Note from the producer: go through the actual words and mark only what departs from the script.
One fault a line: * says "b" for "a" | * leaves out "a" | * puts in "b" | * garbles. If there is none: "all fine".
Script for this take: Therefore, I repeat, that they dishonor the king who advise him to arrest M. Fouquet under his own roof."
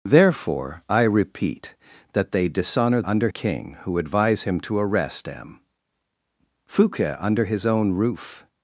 * says "under" for "the"